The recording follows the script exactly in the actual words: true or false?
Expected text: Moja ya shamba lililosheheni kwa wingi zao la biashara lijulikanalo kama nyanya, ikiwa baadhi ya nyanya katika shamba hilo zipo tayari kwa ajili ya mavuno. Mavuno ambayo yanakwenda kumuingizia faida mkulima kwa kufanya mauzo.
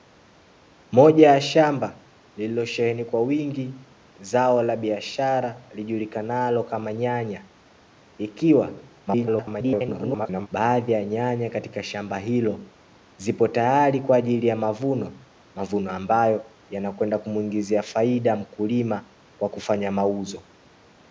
false